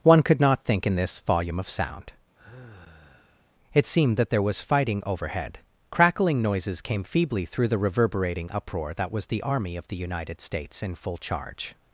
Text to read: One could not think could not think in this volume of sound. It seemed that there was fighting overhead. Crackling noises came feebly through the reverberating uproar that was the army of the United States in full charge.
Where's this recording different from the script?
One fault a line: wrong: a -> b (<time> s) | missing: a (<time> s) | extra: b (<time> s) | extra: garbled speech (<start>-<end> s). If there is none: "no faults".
missing: could not think (0.9 s)